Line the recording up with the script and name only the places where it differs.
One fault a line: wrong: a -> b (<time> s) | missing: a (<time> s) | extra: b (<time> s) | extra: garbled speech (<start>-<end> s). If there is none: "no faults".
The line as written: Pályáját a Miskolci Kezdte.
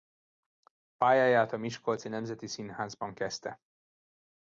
extra: Nemzeti Színházban (2.1 s)